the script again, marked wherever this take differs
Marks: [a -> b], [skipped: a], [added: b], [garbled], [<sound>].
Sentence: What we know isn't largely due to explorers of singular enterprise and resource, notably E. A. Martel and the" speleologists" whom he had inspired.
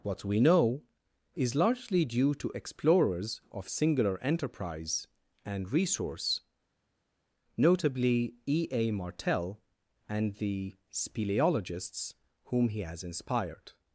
What we know [isn't -> is] largely due to explorers of singular enterprise and resource, notably E. A. Martel and the" speleologists" whom he [had -> has] inspired.